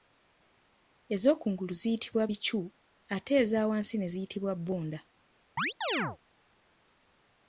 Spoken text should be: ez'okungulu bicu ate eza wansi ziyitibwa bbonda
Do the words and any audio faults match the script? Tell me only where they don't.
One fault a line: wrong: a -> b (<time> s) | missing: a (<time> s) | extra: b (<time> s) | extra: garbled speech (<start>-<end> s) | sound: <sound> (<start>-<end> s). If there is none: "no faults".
extra: ziyitibwa (1.8 s)
extra: ne (4.0 s)
sound: chirp (5.6-6.2 s)